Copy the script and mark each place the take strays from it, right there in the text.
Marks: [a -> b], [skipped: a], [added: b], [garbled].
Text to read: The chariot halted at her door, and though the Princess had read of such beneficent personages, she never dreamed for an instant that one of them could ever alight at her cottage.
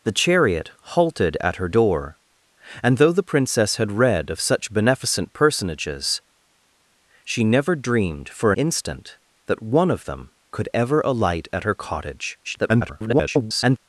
The chariot halted at her door, and though the Princess had read of such beneficent personages, she never dreamed for [skipped: an] instant that one of them could ever alight at her cottage. [garbled]